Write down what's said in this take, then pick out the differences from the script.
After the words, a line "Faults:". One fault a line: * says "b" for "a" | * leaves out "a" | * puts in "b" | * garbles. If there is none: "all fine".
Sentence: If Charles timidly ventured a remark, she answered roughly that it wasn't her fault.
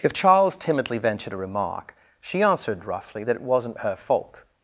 If Charles timidly ventured a remark, she answered roughly that it wasn't her fault.
Faults:
all fine